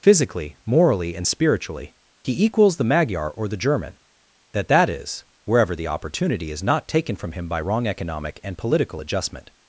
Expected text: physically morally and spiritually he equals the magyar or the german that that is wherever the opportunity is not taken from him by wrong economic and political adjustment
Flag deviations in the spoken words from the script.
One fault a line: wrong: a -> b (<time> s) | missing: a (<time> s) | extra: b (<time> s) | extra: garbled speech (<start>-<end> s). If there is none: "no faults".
no faults